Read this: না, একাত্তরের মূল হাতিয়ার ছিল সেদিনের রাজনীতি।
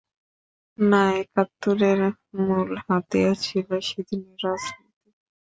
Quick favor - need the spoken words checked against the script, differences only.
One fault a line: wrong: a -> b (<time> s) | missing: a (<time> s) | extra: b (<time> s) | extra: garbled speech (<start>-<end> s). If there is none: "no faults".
no faults